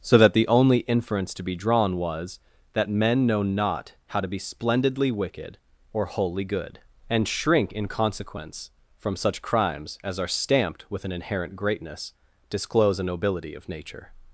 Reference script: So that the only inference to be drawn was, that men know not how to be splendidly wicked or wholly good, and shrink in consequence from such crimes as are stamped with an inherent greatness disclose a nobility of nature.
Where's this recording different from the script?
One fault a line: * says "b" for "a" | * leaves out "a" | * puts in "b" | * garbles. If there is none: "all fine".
all fine